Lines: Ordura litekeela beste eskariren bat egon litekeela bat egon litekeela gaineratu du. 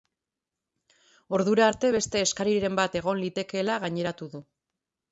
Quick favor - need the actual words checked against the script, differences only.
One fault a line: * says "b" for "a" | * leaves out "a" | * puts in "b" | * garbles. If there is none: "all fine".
* says "arte" for "litekeela"
* leaves out "bat egon litekeela"